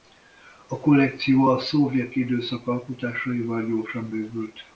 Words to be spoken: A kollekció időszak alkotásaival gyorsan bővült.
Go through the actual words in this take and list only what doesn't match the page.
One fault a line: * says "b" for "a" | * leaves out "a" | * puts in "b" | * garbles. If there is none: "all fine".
* puts in "a szovjet"